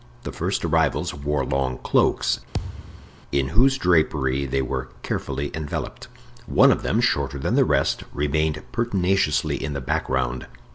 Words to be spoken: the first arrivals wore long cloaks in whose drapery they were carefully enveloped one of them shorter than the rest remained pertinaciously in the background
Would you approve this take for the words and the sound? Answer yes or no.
no